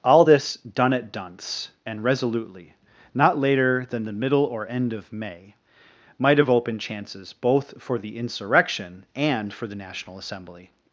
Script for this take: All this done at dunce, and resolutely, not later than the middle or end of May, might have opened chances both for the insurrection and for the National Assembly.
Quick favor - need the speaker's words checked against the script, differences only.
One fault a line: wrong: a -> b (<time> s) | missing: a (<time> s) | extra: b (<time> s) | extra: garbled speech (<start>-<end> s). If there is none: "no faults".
no faults